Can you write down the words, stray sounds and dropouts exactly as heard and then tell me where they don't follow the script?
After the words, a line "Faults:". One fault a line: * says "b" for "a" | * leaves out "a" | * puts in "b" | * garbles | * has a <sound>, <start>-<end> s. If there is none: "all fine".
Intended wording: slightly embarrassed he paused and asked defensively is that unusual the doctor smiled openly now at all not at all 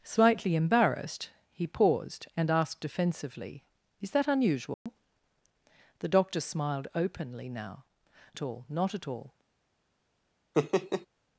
slightly embarrassed he paused and asked defensively is that unusual the doctor smiled openly now at all not at all
Faults:
* has a dropout, 4.7-4.9 s
* has a laugh, 10.5-11.1 s